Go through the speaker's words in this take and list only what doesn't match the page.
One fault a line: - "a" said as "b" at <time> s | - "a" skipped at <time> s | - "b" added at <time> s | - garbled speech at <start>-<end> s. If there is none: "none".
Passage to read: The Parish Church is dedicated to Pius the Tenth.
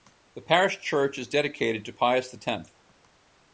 none